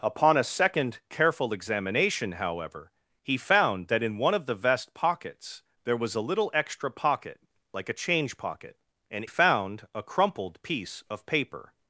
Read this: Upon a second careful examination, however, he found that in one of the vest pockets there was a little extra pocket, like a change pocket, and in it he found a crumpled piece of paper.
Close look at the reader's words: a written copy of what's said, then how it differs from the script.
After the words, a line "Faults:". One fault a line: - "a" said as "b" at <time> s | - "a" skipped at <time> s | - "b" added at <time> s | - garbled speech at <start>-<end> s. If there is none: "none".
Upon a second careful examination, however, he found that in one of the vest pockets there was a little extra pocket, like a change pocket, and found a crumpled piece of paper.
Faults:
- "in it he" skipped at 9.2 s